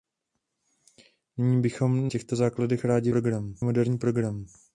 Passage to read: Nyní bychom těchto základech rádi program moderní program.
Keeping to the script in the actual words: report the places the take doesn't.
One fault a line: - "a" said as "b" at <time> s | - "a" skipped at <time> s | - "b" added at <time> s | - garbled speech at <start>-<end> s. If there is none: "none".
none